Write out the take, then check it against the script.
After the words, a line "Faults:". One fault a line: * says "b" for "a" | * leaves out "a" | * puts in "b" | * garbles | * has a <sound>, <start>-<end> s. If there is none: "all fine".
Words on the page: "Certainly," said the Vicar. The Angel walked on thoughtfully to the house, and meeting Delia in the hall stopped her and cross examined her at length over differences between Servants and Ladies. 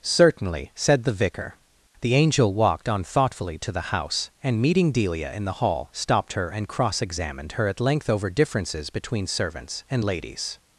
"Certainly," said the Vicar. The Angel walked on thoughtfully to the house, and meeting Delia in the hall stopped her and cross examined her at length over differences between Servants and Ladies.
Faults:
all fine